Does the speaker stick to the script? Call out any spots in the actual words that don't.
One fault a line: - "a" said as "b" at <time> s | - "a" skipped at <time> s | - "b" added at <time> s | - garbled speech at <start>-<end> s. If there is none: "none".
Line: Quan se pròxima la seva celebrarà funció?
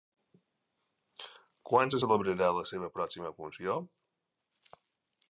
- "pròxima" said as "celebrarà" at 2.0 s
- "celebrarà" said as "pròxima" at 3.0 s